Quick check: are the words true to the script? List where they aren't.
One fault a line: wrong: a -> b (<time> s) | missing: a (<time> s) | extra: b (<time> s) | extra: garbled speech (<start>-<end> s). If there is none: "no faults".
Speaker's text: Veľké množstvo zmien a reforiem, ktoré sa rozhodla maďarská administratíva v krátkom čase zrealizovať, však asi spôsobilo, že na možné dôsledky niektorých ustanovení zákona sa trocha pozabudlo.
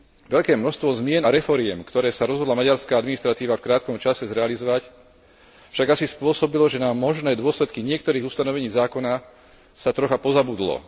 no faults